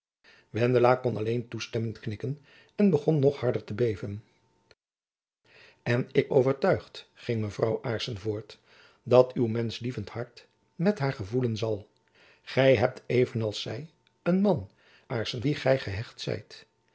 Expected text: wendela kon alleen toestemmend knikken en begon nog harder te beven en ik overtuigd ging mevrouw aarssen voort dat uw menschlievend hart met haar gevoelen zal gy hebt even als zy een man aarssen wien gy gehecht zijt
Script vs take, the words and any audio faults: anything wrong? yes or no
no